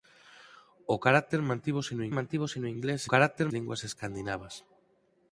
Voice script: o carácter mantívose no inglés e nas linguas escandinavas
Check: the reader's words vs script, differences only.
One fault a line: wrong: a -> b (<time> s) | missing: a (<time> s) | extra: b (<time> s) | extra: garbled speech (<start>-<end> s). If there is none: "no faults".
extra: mantívose no (2.2 s)
wrong: nas -> carácter (3.1 s)